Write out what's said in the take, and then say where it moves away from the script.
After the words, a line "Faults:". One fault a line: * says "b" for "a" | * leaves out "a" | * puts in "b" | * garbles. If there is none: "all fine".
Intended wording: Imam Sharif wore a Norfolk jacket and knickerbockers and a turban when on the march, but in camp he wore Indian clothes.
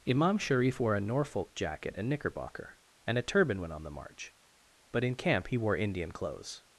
Imam Sharif wore a Norfolk jacket and knickerbocker and a turban when on the march, but in camp he wore Indian clothes.
Faults:
* says "knickerbocker" for "knickerbockers"